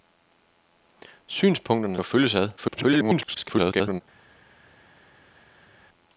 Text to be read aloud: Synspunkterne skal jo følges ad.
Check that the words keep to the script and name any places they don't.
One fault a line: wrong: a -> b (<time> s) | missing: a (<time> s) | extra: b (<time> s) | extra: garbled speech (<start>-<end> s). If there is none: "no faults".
missing: skal (2.0 s)
extra: garbled speech (2.6-4.0 s)